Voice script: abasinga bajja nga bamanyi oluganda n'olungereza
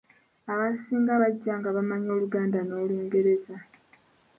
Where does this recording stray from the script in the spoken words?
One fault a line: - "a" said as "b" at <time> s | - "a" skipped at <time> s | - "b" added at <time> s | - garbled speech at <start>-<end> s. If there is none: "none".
none